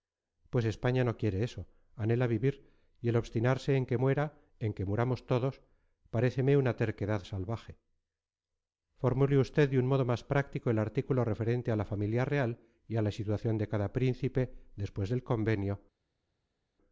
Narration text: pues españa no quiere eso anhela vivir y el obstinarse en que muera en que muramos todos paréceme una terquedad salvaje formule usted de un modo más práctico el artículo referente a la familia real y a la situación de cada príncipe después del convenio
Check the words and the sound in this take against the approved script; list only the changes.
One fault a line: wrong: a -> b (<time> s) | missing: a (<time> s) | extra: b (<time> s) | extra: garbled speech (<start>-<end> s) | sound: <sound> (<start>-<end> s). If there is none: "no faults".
no faults